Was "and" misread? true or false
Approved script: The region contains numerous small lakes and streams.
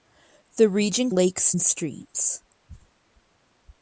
false